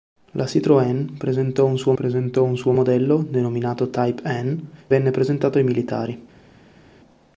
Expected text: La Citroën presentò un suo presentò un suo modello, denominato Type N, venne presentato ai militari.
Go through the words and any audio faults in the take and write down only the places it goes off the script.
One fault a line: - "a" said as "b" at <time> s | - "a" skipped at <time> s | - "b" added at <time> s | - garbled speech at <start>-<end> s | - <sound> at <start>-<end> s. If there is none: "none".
none